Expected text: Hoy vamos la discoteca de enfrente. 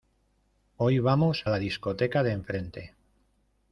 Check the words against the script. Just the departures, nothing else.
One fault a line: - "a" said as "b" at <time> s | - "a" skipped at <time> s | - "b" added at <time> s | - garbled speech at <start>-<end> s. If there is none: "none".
none